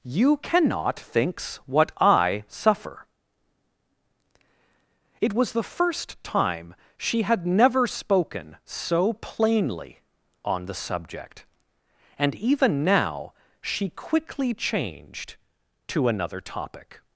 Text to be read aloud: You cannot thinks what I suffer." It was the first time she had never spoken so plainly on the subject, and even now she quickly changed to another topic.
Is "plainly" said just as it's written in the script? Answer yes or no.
yes